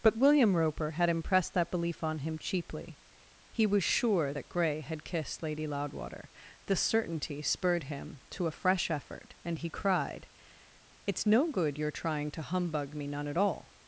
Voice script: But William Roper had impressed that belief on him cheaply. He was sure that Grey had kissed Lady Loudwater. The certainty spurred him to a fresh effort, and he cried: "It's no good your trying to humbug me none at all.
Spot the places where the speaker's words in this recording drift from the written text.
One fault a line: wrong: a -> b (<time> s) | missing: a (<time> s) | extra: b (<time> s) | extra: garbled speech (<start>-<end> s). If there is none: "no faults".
no faults